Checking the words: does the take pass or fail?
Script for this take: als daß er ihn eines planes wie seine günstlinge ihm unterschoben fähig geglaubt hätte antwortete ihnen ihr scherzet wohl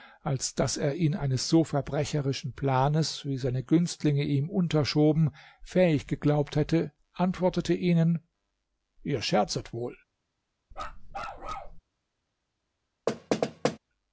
fail